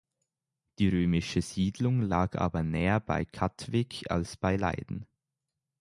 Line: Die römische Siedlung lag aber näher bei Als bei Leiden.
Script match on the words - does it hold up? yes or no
no